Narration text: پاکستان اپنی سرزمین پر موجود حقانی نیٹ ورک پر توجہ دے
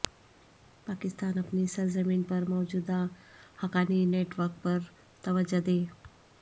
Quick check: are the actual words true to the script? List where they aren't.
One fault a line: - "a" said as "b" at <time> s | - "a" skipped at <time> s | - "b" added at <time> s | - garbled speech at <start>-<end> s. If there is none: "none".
none